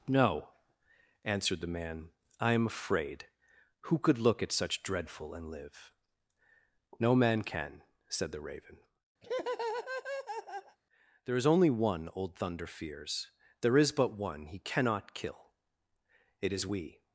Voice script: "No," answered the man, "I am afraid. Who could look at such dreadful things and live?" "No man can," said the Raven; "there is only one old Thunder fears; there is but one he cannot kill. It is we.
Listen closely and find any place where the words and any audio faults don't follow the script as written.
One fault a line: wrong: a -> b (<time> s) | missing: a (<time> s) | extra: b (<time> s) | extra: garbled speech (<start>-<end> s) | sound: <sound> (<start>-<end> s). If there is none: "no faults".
missing: things (5.3 s)
sound: laugh (9.2-10.8 s)